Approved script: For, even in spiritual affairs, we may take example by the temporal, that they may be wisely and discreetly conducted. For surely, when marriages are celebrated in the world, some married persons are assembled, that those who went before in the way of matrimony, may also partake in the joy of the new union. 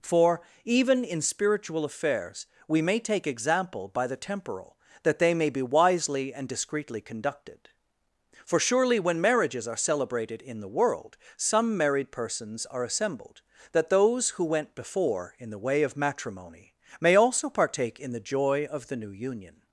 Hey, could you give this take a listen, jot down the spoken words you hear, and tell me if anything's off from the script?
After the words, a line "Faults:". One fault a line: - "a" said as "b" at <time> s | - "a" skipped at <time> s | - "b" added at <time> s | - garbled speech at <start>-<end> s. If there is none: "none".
For, even in spiritual affairs, we may take example by the temporal, that they may be wisely and discreetly conducted. For surely, when marriages are celebrated in the world, some married persons are assembled, that those who went before in the way of matrimony, may also partake in the joy of the new union.
Faults:
none